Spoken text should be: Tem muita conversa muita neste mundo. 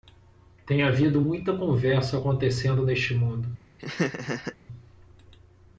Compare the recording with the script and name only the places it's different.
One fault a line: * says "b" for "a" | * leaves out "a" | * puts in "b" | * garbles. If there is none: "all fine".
* puts in "havido"
* says "acontecendo" for "muita"